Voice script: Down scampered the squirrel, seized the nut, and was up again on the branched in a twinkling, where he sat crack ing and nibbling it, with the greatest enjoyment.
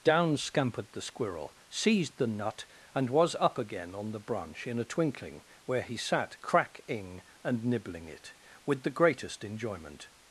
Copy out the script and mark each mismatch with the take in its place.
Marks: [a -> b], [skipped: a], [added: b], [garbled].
Down scampered the squirrel, seized the nut, and was up again on the [branched -> branch] in a twinkling, where he sat crack ing and nibbling it, with the greatest enjoyment.